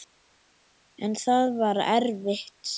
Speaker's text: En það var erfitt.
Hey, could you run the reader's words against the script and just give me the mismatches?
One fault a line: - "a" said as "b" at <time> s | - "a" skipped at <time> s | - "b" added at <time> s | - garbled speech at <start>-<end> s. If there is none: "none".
none